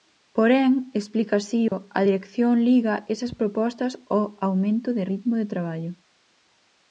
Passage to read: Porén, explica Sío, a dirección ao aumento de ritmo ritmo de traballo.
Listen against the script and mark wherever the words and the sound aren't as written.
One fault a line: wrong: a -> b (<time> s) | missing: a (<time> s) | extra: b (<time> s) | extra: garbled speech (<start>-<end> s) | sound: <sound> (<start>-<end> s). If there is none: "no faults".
sound: dropout (1.7-1.7 s)
extra: liga esas propostas (2.7 s)
missing: ritmo (5.3 s)